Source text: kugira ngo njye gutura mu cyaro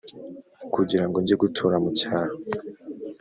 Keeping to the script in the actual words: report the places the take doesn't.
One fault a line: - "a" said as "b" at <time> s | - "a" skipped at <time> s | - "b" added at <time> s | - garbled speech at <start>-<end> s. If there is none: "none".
none